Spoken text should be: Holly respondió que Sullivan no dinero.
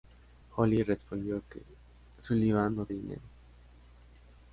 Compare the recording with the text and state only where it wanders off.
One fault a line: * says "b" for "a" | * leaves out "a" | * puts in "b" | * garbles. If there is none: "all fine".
all fine